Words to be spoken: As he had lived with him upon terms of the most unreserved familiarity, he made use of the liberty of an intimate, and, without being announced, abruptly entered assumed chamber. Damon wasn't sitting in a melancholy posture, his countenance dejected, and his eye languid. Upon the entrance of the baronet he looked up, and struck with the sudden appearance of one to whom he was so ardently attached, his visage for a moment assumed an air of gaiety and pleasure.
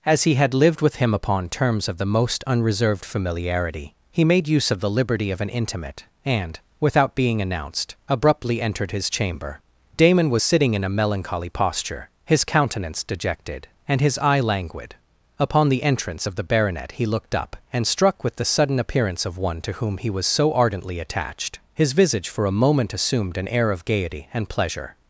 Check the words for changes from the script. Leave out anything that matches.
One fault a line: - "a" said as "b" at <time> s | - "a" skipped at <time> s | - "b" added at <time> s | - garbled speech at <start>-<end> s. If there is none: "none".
- "assumed" said as "his" at 8.9 s
- "wasn't" said as "was" at 10.3 s